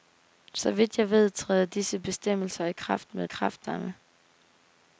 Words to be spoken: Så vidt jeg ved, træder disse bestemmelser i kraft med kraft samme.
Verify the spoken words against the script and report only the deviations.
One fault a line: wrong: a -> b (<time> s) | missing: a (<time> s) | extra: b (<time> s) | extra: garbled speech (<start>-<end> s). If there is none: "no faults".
no faults